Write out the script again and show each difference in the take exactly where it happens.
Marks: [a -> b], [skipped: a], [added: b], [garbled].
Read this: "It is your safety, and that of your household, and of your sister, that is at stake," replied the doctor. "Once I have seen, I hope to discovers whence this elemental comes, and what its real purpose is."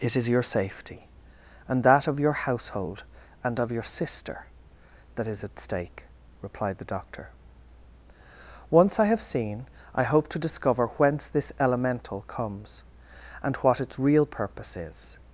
"It is your safety, and that of your household, and of your sister, that is at stake," replied the doctor. "Once I have seen, I hope to [discovers -> discover] whence this elemental comes, and what its real purpose is."